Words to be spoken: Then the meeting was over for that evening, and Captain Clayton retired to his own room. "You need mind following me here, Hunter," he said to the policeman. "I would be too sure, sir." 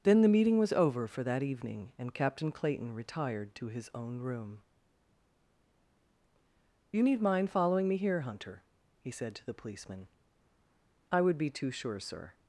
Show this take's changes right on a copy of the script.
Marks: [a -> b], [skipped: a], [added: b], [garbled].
Then the meeting was over for that evening, and Captain Clayton retired to his own room. "You need mind following me here, Hunter," he said to the policeman. "I would be too sure, sir."